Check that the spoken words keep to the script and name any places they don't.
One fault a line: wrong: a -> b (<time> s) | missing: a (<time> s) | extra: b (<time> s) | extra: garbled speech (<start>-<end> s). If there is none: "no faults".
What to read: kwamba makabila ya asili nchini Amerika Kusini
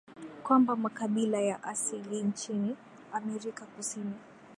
no faults